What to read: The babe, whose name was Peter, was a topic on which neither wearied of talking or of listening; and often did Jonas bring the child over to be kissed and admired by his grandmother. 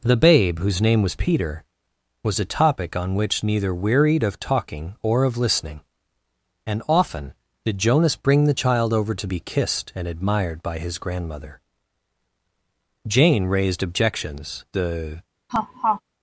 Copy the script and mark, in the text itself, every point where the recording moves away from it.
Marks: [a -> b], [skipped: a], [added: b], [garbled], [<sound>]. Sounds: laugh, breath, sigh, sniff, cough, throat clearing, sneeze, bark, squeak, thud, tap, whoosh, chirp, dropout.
The babe, whose name was Peter, was a topic on which neither wearied of talking or of listening; and often did Jonas bring the child over to be kissed and admired by his grandmother. [added: Jane raised objections the] [laugh]